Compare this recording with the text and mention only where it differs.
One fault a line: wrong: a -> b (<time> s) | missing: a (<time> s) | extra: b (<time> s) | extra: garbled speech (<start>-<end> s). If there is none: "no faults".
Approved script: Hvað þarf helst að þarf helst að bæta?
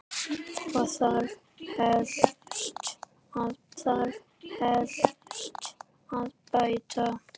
no faults